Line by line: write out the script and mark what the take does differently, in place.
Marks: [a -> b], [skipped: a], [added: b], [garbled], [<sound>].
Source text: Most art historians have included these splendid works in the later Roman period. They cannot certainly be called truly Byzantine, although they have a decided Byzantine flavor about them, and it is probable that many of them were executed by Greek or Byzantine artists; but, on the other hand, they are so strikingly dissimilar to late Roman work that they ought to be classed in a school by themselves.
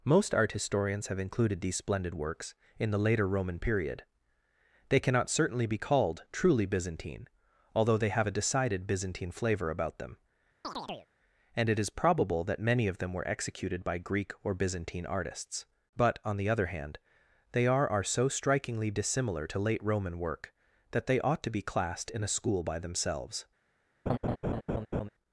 Most art historians have included these splendid works in the later Roman period. They cannot certainly be called truly Byzantine, although they have a decided Byzantine flavor about them, [chirp] and it is probable that many of them were executed by Greek or Byzantine artists; but, on the other hand, they are [added: are] so strikingly dissimilar to late Roman work that they ought to be classed in a school by themselves. [laugh]